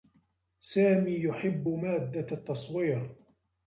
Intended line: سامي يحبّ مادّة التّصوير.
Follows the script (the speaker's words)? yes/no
yes